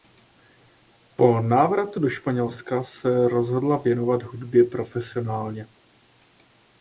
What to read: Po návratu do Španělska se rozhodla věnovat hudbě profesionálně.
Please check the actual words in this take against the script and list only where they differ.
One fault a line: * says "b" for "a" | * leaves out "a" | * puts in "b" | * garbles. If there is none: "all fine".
all fine